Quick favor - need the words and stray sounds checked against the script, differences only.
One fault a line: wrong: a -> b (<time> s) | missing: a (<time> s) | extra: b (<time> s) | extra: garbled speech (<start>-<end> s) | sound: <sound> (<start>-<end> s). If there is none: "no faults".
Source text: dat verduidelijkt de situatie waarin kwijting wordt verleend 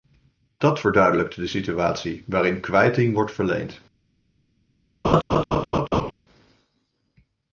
sound: laugh (5.0-6.1 s)